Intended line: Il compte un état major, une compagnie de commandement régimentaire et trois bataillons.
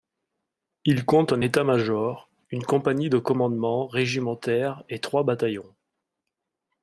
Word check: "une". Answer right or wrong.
right